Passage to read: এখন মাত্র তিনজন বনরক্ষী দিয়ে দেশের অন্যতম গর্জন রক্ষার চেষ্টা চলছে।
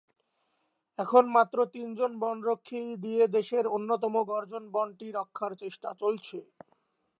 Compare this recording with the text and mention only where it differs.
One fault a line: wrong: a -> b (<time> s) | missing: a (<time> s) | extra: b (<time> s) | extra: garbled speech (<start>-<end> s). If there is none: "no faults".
extra: বনটি (4.7 s)